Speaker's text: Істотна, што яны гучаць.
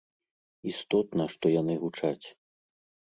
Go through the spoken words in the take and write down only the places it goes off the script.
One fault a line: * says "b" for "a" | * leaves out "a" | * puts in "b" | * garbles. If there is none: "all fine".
all fine